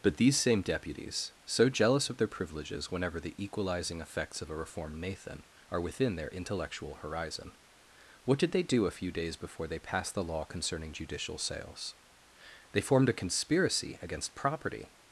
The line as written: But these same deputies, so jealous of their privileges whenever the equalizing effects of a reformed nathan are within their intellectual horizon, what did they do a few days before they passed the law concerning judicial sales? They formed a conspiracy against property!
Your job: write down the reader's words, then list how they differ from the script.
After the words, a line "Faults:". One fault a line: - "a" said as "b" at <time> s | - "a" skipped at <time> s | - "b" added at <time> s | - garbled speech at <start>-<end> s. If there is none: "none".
But these same deputies, so jealous of their privileges whenever the equalizing effects of a reformed nathan are within their intellectual horizon, what did they do a few days before they passed the law concerning judicial sales? They formed a conspiracy against property!
Faults:
none